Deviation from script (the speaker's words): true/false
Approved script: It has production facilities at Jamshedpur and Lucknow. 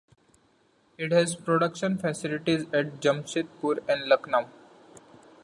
false